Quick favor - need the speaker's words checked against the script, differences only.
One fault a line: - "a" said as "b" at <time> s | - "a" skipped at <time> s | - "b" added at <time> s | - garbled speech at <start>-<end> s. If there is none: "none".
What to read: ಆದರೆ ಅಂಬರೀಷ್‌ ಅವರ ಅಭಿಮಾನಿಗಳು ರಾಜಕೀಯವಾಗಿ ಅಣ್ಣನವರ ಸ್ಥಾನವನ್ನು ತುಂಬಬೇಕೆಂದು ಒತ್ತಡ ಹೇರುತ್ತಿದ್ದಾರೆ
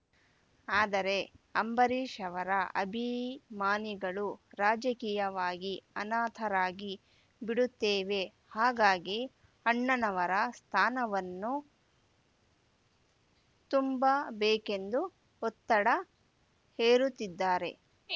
- "ಅನಾಥರಾಗಿ ಬಿಡುತ್ತೇವೆ ಹಾಗಾಗಿ" added at 6.0 s